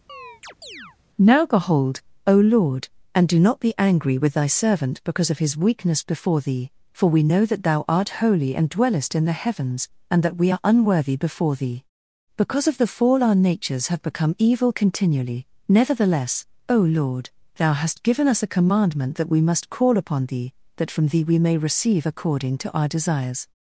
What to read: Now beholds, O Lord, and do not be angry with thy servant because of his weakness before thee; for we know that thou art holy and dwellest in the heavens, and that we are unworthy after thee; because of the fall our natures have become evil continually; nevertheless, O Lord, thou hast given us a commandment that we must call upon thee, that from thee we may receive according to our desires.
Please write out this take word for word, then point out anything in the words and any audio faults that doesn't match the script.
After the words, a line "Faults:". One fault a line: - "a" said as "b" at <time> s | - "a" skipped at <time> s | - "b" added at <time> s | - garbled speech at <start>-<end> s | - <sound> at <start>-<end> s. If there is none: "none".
Now behold, O Lord, and do not be angry with thy servant because of his weakness before thee; for we know that thou art holy and dwellest in the heavens, and that we are unworthy before thee; because of the fall our natures have become evil continually; nevertheless, O Lord, thou hast given us a commandment that we must call upon thee, that from thee we may receive according to our desires.
Faults:
- chirp at 0.1-1.0 s
- "beholds" said as "behold" at 1.4 s
- "after" said as "before" at 11.2 s